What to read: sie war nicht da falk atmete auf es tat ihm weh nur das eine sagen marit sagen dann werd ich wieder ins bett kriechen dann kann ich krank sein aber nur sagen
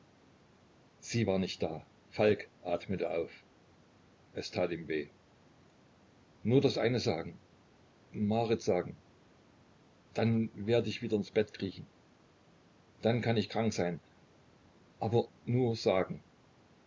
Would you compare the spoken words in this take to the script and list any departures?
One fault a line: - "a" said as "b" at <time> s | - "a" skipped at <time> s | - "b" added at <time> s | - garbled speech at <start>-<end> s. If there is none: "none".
none